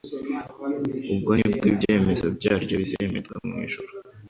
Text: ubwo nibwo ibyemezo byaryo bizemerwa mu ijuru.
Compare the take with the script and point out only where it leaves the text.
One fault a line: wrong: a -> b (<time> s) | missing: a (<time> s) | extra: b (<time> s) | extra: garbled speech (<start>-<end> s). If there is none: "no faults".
no faults